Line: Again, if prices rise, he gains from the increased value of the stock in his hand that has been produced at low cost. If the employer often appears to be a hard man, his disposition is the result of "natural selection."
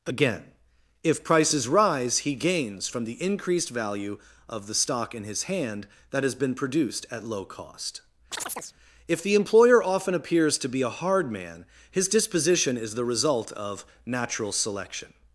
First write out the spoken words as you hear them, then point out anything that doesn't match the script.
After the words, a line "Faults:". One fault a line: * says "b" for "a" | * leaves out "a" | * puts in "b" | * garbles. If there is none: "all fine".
Again, if prices rise, he gains from the increased value of the stock in his hand that has been produced at low cost. If the employer often appears to be a hard man, his disposition is the result of "natural selection."
Faults:
all fine